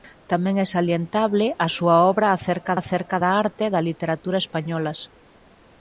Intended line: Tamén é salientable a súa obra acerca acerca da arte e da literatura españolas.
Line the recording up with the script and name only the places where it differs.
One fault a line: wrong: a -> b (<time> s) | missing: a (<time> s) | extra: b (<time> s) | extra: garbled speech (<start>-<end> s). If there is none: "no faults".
no faults